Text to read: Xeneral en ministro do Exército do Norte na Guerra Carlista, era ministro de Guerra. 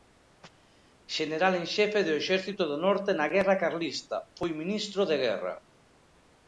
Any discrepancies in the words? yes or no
yes